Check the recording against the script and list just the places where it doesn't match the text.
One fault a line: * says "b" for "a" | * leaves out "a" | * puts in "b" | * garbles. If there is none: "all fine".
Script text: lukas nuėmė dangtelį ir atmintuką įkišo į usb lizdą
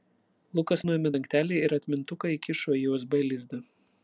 all fine